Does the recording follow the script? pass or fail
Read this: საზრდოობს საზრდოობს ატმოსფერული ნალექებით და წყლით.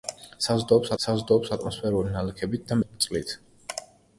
pass